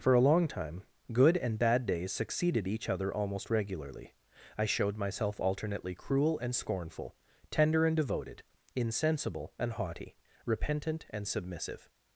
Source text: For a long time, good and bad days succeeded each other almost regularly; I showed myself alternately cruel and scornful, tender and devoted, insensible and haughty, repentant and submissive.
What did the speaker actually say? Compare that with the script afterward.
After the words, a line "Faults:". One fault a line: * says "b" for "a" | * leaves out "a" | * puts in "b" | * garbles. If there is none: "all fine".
For a long time, good and bad days succeeded each other almost regularly; I showed myself alternately cruel and scornful, tender and devoted, insensible and haughty, repentant and submissive.
Faults:
all fine